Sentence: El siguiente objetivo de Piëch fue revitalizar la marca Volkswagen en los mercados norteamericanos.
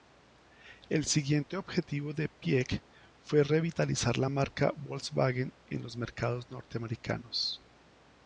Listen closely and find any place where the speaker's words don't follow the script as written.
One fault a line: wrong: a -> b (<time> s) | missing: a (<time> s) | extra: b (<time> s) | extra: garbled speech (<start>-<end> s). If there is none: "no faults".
no faults